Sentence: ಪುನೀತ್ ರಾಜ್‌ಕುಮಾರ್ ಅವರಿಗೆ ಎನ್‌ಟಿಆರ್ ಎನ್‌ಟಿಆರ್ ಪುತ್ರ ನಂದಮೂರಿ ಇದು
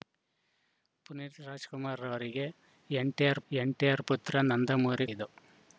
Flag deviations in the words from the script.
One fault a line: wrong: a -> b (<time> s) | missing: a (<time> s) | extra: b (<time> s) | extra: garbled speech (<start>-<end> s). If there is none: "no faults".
no faults